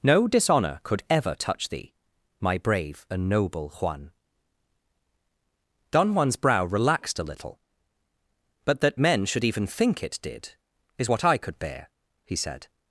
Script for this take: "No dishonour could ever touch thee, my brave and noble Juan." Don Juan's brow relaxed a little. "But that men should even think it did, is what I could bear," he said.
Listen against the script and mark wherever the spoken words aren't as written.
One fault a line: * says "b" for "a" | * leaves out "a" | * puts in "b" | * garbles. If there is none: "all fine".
all fine